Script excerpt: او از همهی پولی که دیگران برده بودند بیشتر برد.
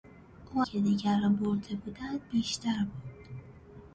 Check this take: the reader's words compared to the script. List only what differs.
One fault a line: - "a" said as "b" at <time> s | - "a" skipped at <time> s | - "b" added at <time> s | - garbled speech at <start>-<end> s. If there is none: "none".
- "از همهی پولی" skipped at 0.6 s